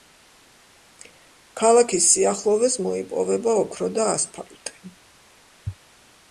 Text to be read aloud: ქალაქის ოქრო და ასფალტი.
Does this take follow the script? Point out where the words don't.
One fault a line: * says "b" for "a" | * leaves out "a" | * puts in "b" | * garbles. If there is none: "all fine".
* puts in "სიახლოვეს მოიპოვება"